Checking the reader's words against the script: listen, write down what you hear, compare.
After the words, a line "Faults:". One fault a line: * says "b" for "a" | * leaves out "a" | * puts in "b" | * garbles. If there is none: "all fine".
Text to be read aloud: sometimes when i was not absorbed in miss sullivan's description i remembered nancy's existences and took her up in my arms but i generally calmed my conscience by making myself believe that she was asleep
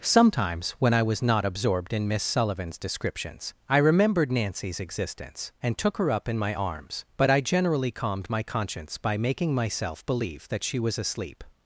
sometimes when i was not absorbed in miss sullivan's descriptions i remembered nancy's existence and took her up in my arms but i generally calmed my conscience by making myself believe that she was asleep
Faults:
* says "descriptions" for "description"
* says "existence" for "existences"